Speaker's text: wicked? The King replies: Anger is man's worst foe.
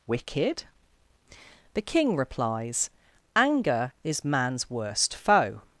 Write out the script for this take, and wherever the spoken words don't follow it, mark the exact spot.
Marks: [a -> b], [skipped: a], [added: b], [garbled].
wicked? The King replies: Anger is man's worst foe.